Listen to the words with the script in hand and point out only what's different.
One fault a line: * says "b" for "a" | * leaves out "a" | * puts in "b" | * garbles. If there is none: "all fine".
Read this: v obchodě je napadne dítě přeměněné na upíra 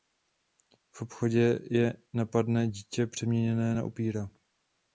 all fine